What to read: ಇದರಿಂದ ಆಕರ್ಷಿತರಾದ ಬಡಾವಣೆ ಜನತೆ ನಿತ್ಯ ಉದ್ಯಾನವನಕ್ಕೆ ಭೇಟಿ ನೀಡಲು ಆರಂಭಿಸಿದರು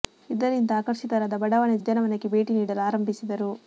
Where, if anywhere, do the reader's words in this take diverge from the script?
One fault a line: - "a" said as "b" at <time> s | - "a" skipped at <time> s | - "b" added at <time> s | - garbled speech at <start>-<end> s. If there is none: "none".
- "ಜನತೆ ನಿತ್ಯ" skipped at 1.8 s